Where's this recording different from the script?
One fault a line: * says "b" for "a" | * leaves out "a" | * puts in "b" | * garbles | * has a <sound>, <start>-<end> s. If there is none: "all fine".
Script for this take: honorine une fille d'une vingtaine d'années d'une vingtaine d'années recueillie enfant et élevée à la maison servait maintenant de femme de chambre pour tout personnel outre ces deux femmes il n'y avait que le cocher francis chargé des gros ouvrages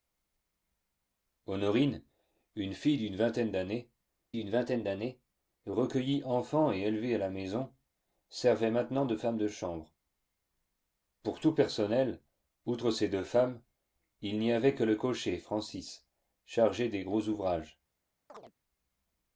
* has a chirp, 18.3-18.5 s